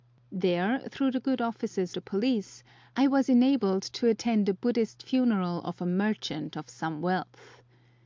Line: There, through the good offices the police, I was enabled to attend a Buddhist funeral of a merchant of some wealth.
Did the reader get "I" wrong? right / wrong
right